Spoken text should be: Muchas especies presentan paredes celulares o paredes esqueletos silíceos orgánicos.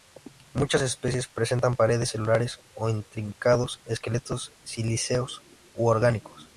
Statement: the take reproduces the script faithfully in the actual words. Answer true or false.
false